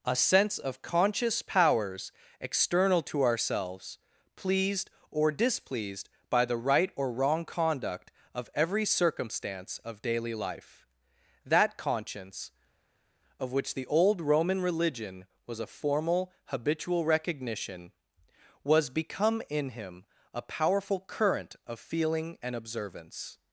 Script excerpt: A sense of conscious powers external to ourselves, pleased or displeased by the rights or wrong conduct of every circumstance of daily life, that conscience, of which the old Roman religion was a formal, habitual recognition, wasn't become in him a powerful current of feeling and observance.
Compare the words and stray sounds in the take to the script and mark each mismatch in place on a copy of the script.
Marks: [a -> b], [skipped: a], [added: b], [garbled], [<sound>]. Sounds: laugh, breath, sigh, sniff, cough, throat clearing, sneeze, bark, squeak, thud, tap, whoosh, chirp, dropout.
A sense of conscious powers external to ourselves, pleased or displeased by the [rights -> right] or wrong conduct of every circumstance of daily life, that conscience, of which the old Roman religion was a formal, habitual recognition, [wasn't -> was] become in him a powerful current of feeling and observance.